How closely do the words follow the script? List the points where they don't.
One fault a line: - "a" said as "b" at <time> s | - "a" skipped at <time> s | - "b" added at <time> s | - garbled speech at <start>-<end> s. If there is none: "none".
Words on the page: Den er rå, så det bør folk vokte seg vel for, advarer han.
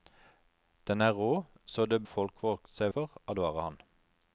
- "bør" skipped at 2.0 s
- "vel" skipped at 2.9 s